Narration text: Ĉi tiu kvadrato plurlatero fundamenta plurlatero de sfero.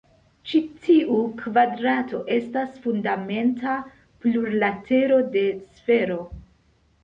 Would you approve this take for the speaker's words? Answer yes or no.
no